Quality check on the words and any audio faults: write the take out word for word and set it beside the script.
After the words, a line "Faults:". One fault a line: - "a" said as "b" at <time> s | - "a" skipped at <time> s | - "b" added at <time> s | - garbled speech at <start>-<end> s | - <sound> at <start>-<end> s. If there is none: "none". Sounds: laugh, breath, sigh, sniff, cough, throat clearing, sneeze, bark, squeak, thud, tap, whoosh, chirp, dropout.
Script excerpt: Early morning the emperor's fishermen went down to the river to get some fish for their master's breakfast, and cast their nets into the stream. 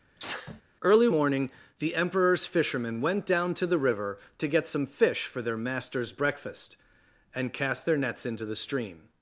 Early morning the emperor's fishermen went down to the river to get some fish for their master's breakfast, and cast their nets into the stream.
Faults:
- sneeze at 0.2-0.6 s